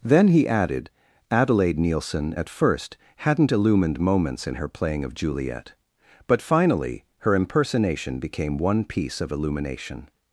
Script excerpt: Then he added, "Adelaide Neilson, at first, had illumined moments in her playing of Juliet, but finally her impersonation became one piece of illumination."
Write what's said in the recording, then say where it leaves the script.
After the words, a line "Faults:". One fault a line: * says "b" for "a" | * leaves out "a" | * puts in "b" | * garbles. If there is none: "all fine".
Then he added, "Adelaide Neilson, at first, hadn't illumined moments in her playing of Juliet, but finally her impersonation became one piece of illumination."
Faults:
* says "hadn't" for "had"